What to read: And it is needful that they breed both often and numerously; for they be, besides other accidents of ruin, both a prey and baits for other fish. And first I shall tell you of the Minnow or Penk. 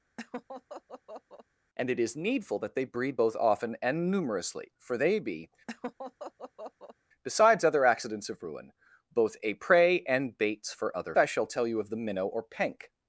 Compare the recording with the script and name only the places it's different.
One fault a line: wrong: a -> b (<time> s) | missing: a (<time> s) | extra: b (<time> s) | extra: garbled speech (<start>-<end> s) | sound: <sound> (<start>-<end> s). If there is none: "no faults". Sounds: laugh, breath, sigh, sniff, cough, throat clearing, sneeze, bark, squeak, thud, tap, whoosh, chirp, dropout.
sound: laugh (0.2-1.5 s)
sound: laugh (5.7-7.0 s)
missing: fish And first (11.2 s)